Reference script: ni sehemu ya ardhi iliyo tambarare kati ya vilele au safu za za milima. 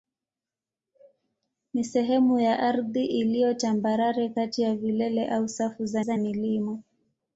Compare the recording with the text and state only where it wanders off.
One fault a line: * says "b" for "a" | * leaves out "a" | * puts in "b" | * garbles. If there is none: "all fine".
all fine